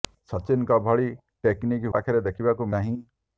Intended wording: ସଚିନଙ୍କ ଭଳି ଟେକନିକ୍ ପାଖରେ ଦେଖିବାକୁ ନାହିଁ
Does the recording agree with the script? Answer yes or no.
yes